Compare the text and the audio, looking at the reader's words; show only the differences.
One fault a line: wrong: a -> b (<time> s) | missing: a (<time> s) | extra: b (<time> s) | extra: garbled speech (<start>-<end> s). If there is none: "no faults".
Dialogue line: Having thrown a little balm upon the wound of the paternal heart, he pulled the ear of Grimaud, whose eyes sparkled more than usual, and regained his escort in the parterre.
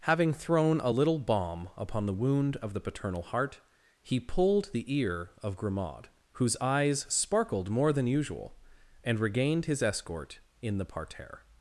no faults